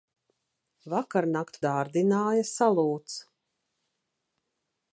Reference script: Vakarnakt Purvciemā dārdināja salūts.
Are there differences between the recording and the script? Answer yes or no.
yes